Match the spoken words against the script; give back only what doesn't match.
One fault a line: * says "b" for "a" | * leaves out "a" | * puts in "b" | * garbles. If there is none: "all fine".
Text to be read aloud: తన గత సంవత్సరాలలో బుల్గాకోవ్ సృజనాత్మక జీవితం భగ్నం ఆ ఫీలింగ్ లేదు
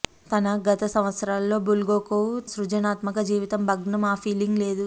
all fine